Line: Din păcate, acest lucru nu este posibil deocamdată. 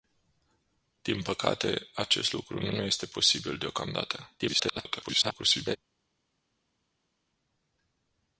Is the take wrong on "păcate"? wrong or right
right